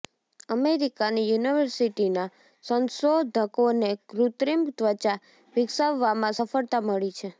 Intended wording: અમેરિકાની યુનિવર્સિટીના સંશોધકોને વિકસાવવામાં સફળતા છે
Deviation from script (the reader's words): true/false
true